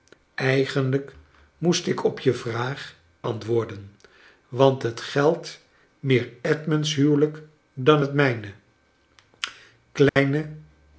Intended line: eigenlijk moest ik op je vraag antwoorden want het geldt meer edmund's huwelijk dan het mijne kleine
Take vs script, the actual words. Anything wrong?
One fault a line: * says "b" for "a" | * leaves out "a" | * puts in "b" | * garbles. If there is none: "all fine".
all fine